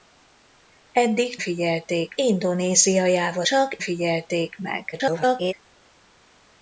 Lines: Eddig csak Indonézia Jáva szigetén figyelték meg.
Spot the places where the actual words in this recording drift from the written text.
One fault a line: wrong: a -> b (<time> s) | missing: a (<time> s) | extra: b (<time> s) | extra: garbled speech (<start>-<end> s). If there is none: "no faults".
wrong: csak -> figyelték (1.4 s)
wrong: szigetén -> csak (3.4 s)
extra: garbled speech (4.9-5.5 s)